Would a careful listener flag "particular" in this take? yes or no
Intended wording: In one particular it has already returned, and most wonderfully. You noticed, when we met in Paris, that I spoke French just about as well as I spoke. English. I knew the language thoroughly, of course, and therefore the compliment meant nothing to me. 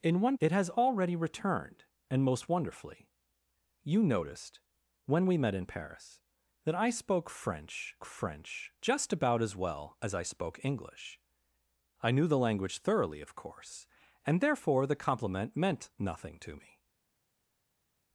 yes